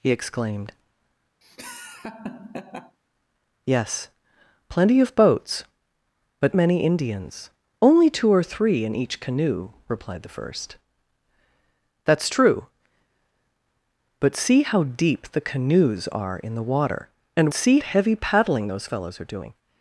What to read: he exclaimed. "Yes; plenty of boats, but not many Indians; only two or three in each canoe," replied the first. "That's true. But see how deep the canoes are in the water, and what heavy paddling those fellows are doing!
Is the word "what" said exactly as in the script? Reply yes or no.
no